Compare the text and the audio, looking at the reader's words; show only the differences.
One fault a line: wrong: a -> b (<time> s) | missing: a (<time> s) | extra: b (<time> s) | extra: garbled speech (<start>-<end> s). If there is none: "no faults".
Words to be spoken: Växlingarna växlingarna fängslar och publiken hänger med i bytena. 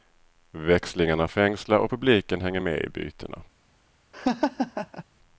missing: växlingarna (1.3 s)